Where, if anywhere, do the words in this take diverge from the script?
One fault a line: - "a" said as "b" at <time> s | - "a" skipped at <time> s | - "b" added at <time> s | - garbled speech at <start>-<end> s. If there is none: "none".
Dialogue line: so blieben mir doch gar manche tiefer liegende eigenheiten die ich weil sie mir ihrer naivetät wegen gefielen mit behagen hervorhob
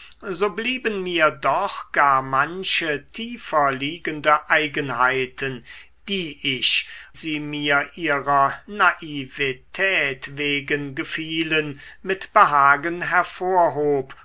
- "weil" skipped at 6.9 s